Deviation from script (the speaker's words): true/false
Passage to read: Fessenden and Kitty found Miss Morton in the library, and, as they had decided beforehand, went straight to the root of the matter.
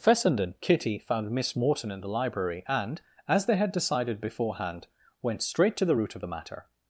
true